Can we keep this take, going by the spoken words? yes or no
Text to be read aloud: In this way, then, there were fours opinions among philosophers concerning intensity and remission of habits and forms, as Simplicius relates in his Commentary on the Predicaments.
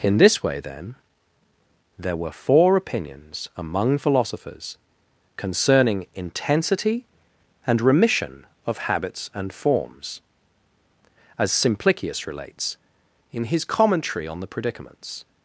no